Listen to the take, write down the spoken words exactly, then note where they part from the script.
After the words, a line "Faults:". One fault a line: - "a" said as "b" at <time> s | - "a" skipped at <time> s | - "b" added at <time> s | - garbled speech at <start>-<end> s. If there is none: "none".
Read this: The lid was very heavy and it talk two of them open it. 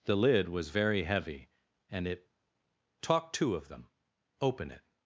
The lid was very heavy and it talk two of them open it.
Faults:
none